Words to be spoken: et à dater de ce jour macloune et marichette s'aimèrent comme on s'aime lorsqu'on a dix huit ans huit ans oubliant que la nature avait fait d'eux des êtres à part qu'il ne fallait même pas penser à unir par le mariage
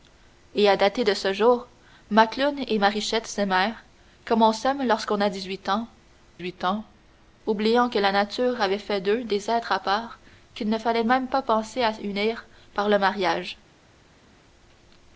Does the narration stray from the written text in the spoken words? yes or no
no